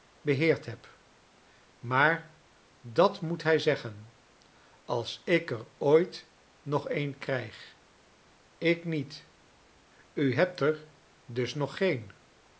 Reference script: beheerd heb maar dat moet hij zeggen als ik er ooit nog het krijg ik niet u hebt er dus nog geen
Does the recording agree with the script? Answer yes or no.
no